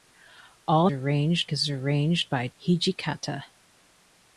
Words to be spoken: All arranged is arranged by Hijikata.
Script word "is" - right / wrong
right